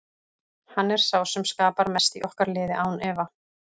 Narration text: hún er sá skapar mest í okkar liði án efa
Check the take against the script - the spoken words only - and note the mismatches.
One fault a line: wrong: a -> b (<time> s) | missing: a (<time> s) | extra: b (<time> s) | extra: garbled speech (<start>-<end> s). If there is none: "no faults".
wrong: hún -> hann (0.8 s)
extra: sem (1.3 s)